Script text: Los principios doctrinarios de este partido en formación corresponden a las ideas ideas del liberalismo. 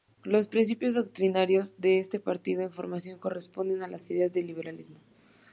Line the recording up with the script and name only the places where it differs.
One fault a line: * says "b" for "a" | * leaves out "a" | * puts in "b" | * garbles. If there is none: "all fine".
* leaves out "ideas"